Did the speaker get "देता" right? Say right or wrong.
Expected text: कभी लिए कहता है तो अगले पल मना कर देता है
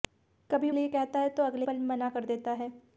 right